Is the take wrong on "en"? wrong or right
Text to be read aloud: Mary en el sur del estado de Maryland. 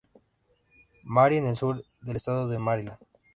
right